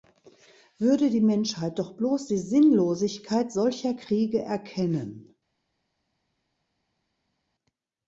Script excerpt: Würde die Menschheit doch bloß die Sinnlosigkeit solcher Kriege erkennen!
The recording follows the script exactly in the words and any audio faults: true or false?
true